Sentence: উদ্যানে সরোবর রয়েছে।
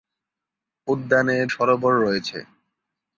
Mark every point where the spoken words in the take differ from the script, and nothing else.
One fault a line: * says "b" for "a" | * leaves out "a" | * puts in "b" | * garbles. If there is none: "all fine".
all fine